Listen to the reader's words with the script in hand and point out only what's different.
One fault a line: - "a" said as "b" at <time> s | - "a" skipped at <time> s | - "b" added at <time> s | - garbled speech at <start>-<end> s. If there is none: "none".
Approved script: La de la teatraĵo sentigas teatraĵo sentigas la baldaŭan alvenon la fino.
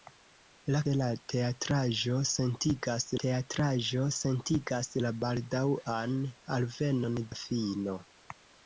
none